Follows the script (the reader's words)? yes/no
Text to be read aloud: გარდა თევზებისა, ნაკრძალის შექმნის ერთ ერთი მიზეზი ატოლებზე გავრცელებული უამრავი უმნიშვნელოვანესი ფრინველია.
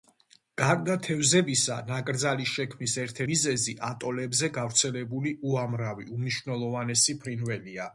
no